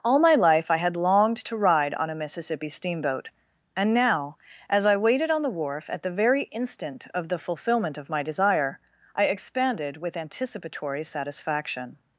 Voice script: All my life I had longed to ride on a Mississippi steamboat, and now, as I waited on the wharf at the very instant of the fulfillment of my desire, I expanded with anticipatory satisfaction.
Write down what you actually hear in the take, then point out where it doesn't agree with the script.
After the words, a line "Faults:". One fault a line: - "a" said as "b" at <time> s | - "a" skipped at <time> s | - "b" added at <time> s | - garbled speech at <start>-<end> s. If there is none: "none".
All my life I had longed to ride on a Mississippi steamboat, and now, as I waited on the wharf at the very instant of the fulfillment of my desire, I expanded with anticipatory satisfaction.
Faults:
none